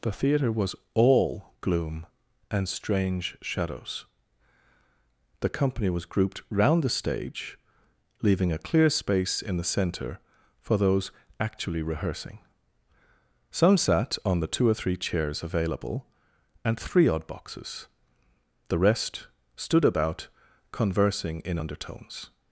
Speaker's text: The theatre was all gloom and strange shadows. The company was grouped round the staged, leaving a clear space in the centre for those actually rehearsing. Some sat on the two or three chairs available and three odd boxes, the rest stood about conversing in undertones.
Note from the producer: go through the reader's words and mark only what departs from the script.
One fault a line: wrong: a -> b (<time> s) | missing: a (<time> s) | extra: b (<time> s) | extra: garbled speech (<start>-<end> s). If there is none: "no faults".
wrong: staged -> stage (6.9 s)